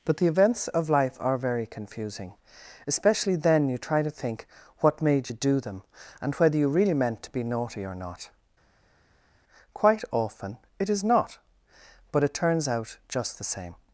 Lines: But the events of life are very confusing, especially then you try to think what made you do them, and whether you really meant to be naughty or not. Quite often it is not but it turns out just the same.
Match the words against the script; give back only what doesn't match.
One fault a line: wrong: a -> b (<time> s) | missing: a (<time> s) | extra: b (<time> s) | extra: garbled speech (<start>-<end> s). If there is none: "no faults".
no faults